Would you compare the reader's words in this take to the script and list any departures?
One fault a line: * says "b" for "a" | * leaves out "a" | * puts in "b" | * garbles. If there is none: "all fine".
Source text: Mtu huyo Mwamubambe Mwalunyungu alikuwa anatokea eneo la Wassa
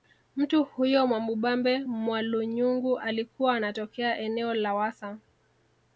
all fine